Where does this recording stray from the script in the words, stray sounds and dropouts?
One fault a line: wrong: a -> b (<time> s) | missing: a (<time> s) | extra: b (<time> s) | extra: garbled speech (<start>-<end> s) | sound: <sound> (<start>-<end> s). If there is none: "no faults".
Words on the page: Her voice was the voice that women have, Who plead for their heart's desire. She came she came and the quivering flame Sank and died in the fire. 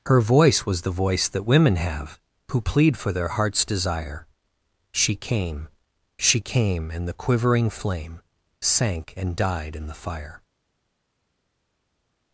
no faults